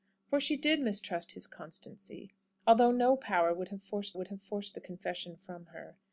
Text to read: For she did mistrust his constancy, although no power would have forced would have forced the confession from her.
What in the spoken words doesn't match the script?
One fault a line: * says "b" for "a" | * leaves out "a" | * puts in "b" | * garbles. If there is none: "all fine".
all fine